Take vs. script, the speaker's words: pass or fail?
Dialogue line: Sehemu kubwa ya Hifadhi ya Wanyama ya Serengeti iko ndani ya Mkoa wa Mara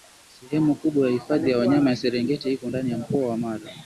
pass